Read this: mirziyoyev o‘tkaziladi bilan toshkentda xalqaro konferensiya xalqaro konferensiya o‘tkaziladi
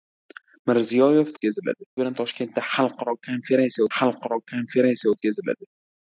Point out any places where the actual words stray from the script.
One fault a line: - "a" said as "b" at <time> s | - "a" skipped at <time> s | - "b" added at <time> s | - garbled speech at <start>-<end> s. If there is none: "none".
none